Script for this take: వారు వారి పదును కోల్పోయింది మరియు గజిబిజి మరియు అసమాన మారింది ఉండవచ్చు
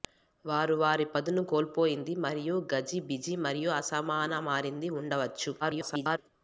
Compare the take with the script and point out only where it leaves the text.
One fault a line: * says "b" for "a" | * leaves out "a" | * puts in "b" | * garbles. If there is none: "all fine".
* garbles